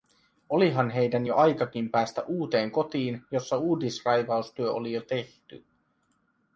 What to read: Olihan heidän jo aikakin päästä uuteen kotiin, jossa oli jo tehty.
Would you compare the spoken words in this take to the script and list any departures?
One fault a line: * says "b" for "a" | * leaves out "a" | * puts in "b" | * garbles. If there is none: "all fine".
* puts in "uudisraivaustyö"